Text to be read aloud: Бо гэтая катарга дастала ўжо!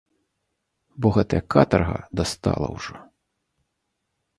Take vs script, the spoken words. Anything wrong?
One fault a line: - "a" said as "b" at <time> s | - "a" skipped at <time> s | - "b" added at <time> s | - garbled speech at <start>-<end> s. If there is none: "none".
none